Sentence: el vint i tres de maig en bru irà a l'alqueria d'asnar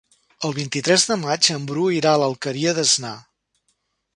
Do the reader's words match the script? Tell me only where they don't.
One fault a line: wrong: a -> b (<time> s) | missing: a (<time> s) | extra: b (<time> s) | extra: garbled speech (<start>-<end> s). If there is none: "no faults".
no faults